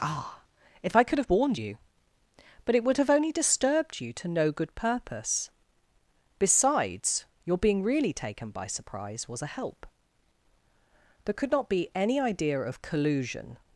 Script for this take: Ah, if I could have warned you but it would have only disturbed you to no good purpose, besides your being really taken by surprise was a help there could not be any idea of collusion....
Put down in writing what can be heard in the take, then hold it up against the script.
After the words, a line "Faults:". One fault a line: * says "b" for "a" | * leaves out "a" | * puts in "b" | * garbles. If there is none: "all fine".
Ah, if I could have warned you but it would have only disturbed you to no good purpose, besides your being really taken by surprise was a help there could not be any idea of collusion....
Faults:
all fine